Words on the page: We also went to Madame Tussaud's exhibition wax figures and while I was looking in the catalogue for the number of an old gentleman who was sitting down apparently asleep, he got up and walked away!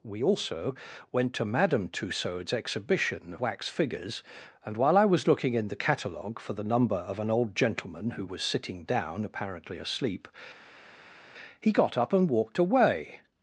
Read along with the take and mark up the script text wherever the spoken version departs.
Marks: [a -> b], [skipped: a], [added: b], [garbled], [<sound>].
We also went to Madame Tussaud's exhibition wax figures and while I was looking in the catalogue for the number of an old gentleman who was sitting down apparently asleep, he got up and walked away!